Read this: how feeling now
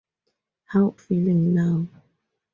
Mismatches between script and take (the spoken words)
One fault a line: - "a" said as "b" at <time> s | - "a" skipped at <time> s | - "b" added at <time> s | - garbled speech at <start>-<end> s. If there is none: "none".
none